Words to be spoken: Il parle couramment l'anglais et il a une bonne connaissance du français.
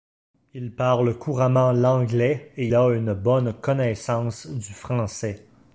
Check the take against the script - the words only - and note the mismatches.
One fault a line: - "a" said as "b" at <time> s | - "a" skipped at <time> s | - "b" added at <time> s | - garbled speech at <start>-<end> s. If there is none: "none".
- "il" skipped at 2.7 s